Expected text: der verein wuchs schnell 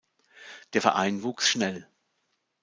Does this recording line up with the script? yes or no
yes